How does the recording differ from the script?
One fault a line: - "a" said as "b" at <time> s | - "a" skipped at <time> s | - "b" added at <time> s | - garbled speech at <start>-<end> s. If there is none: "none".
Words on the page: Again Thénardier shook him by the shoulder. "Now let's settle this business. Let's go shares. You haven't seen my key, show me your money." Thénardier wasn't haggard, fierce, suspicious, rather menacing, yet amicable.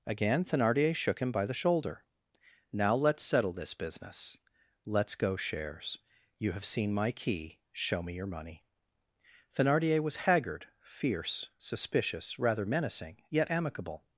- "haven't" said as "have" at 6.5 s
- "wasn't" said as "was" at 10.0 s